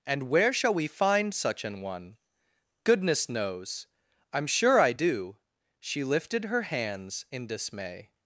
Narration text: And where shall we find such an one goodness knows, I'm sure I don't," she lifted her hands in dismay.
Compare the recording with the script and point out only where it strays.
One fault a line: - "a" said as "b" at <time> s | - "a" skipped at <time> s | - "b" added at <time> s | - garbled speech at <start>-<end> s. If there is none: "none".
- "don't" said as "do" at 4.9 s